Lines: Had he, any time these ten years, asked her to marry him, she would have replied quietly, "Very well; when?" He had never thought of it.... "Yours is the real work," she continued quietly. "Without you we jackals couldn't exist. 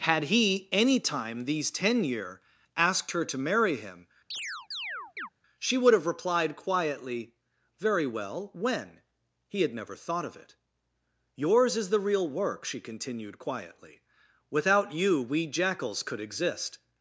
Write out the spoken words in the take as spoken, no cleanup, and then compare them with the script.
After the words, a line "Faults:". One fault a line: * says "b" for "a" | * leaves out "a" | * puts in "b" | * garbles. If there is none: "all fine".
Had he, any time these ten year, asked her to marry him, she would have replied quietly, "Very well; when?" He had never thought of it.... "Yours is the real work," she continued quietly. "Without you we jackals could exist.
Faults:
* says "year" for "years"
* says "could" for "couldn't"